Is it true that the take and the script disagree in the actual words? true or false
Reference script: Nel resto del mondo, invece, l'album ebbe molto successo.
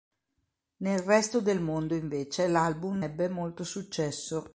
false